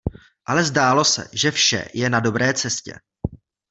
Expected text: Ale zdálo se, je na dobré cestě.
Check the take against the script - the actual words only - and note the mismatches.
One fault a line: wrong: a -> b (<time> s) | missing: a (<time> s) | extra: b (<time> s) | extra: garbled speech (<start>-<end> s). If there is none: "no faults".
extra: že vše (1.3 s)